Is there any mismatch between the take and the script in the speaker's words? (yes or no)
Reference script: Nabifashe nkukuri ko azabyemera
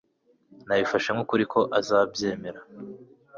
no